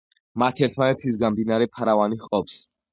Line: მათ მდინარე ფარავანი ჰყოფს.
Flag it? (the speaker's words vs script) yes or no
yes